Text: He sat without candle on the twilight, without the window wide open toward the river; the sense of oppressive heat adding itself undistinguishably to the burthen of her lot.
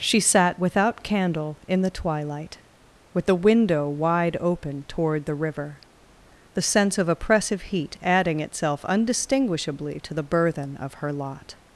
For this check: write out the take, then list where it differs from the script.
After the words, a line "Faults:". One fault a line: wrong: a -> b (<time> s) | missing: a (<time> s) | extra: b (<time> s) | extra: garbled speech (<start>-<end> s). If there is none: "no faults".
She sat without candle in the twilight, with the window wide open toward the river; the sense of oppressive heat adding itself undistinguishably to the burthen of her lot.
Faults:
wrong: He -> She (0.0 s)
wrong: on -> in (1.7 s)
wrong: without -> with (3.1 s)